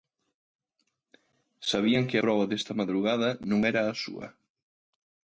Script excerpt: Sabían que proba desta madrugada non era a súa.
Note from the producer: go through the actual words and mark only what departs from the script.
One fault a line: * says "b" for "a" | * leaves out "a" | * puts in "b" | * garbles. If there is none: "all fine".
all fine